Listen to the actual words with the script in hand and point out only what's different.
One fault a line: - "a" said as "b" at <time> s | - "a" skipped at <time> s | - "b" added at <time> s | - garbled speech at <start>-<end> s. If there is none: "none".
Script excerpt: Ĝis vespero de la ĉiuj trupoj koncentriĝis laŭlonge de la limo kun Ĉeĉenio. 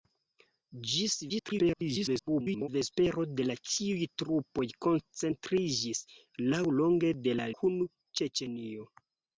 - garbled speech at 1.3-2.7 s
- "limo" skipped at 7.5 s